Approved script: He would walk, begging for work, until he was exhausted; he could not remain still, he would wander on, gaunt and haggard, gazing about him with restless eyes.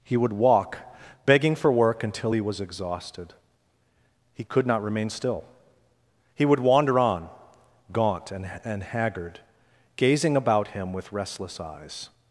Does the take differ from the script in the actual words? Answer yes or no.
yes